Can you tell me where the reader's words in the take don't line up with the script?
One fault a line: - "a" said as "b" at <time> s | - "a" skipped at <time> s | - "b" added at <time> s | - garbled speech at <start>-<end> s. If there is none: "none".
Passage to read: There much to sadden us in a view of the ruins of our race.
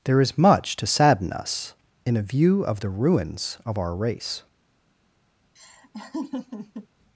- "is" added at 0.2 s